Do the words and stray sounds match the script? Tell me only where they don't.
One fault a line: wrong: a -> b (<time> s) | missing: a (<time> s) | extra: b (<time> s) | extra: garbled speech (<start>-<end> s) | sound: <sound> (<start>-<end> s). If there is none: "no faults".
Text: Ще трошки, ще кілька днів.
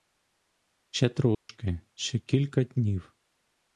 sound: dropout (1.3-1.5 s)